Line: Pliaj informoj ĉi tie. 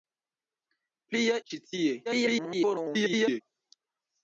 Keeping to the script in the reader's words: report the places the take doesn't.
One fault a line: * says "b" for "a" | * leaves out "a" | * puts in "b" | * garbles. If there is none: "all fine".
* leaves out "informoj"
* garbles